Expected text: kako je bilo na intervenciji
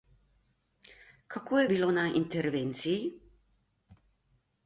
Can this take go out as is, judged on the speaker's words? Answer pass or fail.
pass